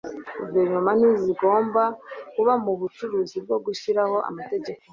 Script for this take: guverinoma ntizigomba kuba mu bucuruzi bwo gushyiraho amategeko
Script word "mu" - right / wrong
right